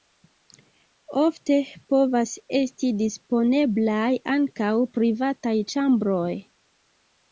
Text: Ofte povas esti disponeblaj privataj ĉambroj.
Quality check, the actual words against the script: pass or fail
fail